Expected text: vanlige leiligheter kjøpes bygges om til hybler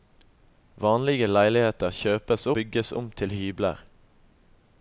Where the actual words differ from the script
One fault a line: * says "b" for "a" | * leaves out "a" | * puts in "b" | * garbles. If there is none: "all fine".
all fine